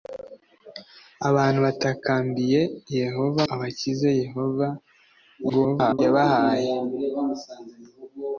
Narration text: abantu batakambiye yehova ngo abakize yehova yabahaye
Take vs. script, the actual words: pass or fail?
fail